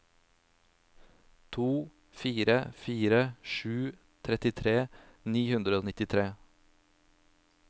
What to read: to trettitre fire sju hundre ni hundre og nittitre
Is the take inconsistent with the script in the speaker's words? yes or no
yes